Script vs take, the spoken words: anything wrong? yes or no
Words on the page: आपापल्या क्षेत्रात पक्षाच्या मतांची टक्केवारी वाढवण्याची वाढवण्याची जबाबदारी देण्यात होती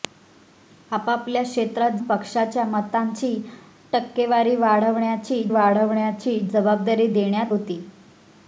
no